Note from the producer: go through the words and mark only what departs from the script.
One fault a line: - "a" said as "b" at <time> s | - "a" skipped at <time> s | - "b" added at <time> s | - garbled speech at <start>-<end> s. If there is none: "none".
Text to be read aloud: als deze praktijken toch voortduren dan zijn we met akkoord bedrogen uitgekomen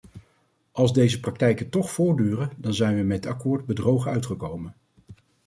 none